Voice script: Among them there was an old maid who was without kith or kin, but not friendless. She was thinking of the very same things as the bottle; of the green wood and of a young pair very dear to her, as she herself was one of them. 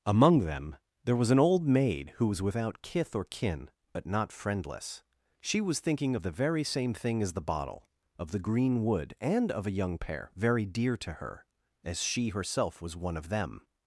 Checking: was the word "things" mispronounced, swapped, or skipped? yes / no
yes